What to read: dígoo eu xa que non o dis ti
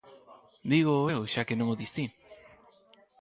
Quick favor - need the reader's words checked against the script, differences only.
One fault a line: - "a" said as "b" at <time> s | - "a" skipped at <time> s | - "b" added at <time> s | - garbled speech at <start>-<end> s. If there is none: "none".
none